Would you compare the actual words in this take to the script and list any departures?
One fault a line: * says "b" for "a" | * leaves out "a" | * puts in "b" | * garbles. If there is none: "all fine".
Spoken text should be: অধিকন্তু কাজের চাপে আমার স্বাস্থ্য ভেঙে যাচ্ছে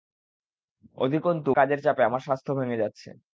all fine